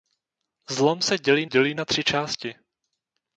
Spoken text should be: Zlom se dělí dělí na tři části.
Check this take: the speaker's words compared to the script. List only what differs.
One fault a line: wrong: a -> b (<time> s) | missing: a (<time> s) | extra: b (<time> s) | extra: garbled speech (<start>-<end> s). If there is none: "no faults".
no faults